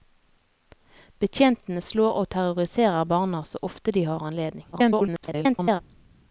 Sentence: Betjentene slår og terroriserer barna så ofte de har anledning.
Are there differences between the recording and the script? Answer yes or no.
yes